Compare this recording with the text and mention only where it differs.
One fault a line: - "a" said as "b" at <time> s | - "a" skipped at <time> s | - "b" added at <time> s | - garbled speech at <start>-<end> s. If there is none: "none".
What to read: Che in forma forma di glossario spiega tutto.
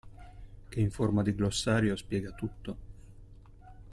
- "forma" skipped at 1.2 s